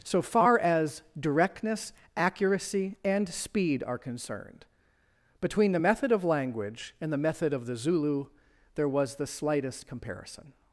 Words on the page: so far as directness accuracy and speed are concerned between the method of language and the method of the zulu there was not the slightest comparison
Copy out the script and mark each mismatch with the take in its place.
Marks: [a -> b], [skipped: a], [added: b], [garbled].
so far as directness accuracy and speed are concerned between the method of language and the method of the zulu there was [skipped: not] the slightest comparison